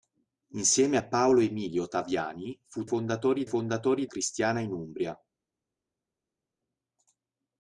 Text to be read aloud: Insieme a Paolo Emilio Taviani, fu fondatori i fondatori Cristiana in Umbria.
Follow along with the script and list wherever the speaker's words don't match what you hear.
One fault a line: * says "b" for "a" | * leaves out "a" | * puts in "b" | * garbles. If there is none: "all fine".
all fine